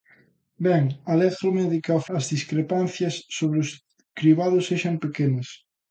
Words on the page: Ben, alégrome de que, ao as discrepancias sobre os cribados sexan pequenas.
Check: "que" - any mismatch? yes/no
no